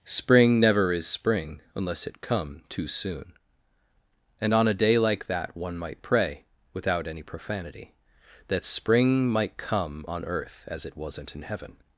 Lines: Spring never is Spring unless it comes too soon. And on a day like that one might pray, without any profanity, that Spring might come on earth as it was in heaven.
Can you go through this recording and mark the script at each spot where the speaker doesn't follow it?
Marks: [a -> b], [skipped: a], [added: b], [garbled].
Spring never is Spring unless it [comes -> come] too soon. And on a day like that one might pray, without any profanity, that Spring might come on earth as it [was -> wasn't] in heaven.